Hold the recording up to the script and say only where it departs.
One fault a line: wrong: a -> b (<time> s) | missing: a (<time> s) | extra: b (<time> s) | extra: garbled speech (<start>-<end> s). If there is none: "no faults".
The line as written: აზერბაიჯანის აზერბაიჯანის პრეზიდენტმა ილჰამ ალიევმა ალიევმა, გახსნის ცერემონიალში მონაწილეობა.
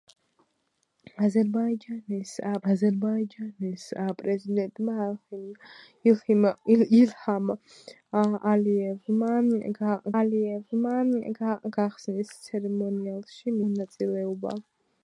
no faults